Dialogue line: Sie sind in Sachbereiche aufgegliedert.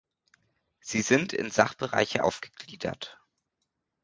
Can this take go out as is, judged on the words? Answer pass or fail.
pass